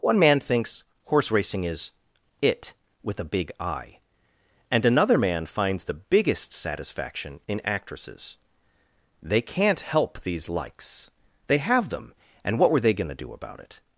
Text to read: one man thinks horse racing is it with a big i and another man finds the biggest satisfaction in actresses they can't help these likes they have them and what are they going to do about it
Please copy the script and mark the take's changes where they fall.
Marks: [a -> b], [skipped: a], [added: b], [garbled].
one man thinks horse racing is it with a big i and another man finds the biggest satisfaction in actresses they can't help these likes they have them and what [are -> were] they going to do about it